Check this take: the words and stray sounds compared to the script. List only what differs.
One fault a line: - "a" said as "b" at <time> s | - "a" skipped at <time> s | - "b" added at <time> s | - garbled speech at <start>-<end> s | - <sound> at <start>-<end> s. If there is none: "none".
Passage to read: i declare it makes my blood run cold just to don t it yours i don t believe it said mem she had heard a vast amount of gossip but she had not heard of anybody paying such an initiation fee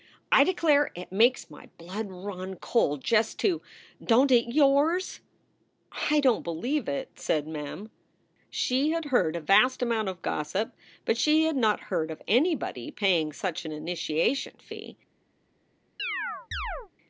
- chirp at 16.0-16.9 s